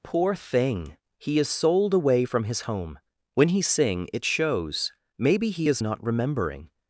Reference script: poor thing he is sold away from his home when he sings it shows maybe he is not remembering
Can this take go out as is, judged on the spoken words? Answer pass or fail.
fail